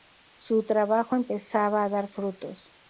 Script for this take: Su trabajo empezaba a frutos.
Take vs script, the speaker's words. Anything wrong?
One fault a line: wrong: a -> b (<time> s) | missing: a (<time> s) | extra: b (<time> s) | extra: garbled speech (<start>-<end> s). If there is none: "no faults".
extra: dar (1.9 s)